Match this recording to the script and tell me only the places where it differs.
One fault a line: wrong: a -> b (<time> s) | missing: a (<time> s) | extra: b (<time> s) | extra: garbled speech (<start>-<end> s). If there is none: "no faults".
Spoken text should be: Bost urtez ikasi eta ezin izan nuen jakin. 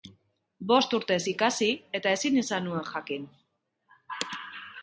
no faults